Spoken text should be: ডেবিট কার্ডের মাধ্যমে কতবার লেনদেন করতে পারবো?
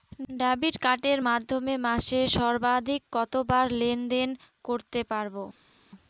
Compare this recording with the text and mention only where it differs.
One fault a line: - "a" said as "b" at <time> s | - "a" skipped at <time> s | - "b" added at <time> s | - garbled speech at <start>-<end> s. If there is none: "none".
- "মাসে সর্বাধিক" added at 1.9 s